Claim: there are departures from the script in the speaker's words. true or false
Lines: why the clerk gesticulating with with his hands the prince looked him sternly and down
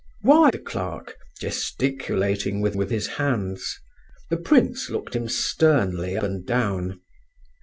false